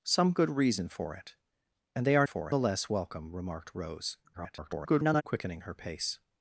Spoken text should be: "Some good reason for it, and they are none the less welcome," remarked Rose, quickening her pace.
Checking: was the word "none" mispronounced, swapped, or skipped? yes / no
yes